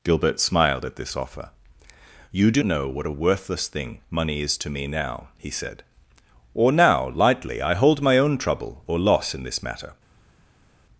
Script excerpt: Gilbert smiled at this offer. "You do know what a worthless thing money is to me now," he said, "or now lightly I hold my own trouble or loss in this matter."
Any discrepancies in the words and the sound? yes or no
no